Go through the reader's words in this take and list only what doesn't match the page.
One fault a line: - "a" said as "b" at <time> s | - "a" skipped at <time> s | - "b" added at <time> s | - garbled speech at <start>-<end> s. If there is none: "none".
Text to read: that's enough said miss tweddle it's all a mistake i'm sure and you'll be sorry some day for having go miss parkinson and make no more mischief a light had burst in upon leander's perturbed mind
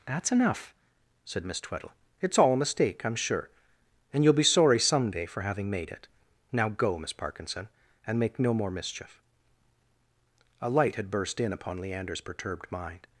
- "made it now" added at 5.7 s